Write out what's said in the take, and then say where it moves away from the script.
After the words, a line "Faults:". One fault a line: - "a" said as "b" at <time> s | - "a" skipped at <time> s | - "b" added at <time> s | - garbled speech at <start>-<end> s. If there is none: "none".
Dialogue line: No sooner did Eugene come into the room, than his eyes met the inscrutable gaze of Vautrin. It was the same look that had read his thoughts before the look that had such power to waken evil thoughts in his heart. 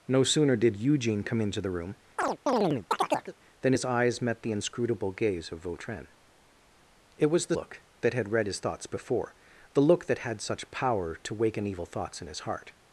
No sooner did Eugene come into the room, than his eyes met the inscrutable gaze of Vautrin. It was the look that had read his thoughts before the look that had such power to waken evil thoughts in his heart.
Faults:
- "same" skipped at 7.6 s